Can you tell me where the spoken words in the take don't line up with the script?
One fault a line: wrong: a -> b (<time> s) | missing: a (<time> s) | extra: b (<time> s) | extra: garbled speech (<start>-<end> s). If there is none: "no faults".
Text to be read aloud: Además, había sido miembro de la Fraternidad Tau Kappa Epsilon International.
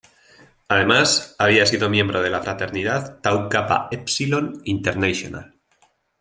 no faults